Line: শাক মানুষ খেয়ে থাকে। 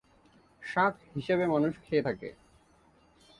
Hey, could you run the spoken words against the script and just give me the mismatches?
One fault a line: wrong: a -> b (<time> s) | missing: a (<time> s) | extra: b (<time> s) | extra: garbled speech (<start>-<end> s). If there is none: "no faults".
extra: হিসেবে (1.1 s)